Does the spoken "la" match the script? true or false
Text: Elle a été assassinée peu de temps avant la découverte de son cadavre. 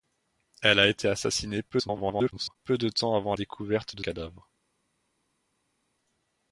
false